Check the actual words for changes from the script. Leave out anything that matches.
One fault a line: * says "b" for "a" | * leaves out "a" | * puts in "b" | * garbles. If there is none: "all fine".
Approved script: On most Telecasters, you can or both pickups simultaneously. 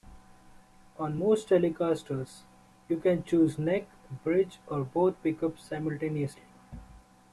* puts in "choose neck bridge"